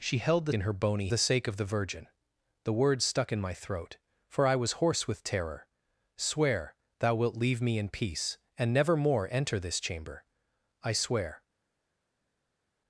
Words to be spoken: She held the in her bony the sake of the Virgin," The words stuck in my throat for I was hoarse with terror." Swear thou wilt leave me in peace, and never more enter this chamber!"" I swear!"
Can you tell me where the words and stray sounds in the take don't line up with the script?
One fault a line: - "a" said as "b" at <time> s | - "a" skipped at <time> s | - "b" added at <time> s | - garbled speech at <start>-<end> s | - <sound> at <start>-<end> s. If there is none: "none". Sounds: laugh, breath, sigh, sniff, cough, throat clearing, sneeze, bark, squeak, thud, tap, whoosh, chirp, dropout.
none